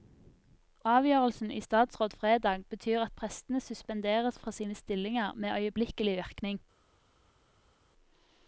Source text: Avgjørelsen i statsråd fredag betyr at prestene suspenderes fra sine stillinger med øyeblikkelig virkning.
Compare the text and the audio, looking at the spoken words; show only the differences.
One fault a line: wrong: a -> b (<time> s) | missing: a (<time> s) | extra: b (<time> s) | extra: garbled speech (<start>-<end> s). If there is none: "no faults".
no faults